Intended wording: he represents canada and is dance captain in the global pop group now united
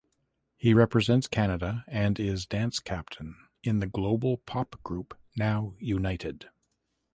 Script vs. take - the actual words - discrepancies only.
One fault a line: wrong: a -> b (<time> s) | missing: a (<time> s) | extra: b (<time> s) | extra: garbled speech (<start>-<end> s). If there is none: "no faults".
no faults